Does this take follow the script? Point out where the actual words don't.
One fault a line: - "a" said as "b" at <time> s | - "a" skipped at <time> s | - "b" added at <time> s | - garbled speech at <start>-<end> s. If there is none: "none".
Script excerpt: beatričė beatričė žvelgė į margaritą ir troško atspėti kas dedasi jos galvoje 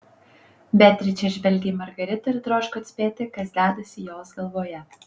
- "beatričė" skipped at 1.3 s